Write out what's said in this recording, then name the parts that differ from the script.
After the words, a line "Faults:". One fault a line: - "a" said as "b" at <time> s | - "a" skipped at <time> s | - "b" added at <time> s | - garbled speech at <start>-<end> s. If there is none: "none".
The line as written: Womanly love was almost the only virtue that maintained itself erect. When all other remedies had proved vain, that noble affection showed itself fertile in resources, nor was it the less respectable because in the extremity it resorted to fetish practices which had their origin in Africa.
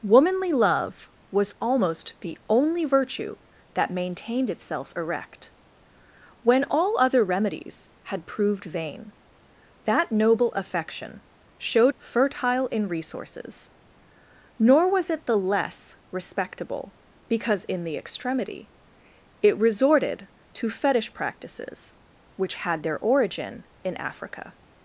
Womanly love was almost the only virtue that maintained itself erect. When all other remedies had proved vain, that noble affection showed fertile in resources, nor was it the less respectable because in the extremity it resorted to fetish practices which had their origin in Africa.
Faults:
- "itself" skipped at 11.9 s